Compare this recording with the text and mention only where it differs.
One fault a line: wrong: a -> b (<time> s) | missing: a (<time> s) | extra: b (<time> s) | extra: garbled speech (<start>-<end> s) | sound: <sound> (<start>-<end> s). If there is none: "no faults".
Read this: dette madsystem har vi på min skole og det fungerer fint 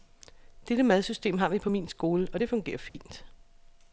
sound: dropout (2.9-2.9 s)